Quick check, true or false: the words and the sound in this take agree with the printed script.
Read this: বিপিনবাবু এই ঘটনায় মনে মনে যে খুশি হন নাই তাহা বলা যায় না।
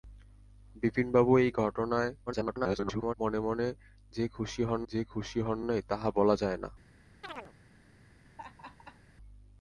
false